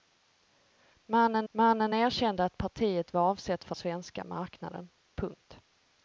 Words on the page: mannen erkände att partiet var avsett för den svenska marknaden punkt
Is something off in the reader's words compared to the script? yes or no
yes